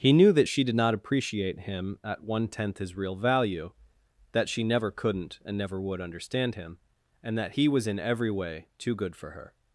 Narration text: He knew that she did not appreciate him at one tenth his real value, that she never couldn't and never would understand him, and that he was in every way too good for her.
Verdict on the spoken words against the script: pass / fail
pass